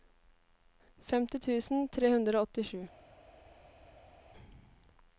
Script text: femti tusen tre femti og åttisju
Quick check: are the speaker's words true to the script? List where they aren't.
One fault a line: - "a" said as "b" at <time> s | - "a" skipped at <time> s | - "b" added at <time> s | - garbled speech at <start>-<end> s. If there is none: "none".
- "femti" said as "hundre" at 2.1 s